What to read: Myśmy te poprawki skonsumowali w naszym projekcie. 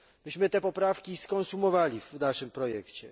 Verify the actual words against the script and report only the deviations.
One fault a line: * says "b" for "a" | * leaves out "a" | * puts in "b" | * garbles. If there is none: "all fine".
all fine